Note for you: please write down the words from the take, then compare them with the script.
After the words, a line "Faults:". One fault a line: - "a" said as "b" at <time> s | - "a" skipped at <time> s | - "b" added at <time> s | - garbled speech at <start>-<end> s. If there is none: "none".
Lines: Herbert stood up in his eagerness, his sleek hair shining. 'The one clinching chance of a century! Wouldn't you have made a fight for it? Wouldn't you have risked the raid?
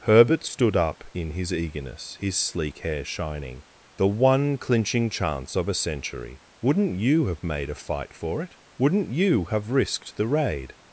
Herbert stood up in his eagerness, his sleek hair shining. 'The one clinching chance of a century! Wouldn't you have made a fight for it? Wouldn't you have risked the raid?
Faults:
none